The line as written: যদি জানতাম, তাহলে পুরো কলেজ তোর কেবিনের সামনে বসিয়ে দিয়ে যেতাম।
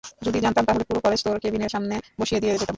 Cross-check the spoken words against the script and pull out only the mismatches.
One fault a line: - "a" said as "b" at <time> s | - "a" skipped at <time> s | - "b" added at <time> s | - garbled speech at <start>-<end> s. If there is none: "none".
none